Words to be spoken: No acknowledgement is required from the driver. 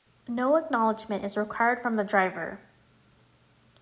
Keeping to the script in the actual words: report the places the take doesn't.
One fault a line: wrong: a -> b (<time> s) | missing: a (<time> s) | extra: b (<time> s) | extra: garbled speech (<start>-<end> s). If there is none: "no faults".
no faults